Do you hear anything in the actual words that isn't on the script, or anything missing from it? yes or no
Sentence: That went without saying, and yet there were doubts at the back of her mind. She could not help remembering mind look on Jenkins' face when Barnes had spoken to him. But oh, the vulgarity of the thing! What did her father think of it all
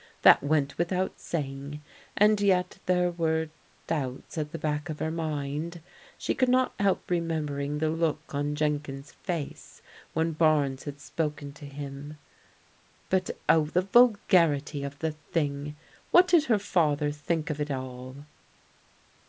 yes